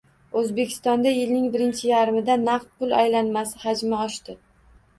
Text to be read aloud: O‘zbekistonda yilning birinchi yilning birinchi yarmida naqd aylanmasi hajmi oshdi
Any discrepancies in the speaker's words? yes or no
yes